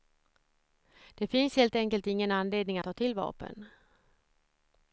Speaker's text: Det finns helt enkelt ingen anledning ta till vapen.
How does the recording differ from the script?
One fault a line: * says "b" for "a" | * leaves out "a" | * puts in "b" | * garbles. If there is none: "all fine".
all fine